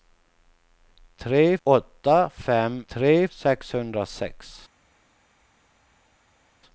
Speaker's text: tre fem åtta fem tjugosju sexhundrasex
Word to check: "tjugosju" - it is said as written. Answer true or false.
false